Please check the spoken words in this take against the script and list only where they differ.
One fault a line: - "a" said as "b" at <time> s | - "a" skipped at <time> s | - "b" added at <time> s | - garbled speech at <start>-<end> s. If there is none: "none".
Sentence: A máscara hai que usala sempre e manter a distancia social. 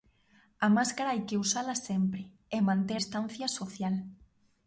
- "a" skipped at 3.0 s